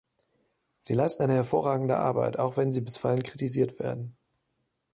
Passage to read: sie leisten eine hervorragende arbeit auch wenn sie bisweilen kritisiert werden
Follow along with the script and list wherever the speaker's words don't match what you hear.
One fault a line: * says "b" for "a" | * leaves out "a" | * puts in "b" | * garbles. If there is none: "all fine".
all fine